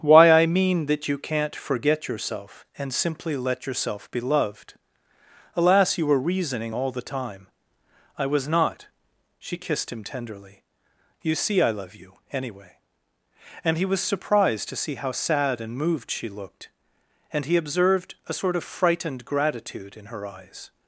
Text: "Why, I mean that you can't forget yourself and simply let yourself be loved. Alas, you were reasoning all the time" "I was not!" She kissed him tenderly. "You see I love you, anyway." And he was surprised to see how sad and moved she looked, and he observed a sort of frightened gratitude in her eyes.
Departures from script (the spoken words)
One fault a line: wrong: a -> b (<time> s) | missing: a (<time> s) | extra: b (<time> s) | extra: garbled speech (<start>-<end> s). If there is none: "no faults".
no faults